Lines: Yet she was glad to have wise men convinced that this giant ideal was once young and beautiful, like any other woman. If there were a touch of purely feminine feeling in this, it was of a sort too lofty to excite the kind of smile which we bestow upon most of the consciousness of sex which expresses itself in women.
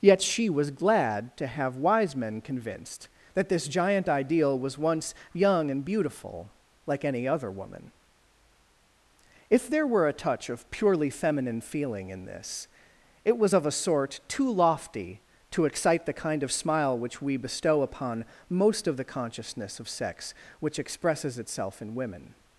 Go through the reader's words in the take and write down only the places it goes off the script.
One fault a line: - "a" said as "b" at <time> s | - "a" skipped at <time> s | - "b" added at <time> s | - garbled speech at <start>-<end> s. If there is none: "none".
none